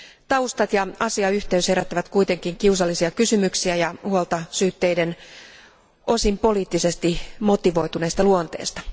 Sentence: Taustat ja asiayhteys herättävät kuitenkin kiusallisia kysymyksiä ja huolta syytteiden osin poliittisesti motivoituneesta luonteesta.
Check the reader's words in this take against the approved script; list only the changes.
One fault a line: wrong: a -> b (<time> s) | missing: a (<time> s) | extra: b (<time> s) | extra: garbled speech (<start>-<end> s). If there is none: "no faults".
no faults